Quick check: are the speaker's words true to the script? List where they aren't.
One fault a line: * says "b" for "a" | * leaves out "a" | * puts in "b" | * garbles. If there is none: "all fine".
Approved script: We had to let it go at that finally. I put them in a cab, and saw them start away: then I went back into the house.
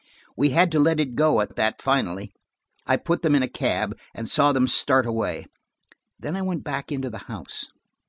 * puts in "at"